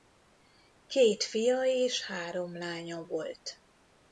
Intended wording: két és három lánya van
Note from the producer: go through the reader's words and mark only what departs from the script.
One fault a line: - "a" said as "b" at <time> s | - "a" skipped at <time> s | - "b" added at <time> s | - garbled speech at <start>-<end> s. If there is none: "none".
- "fia" added at 1.2 s
- "van" said as "volt" at 3.0 s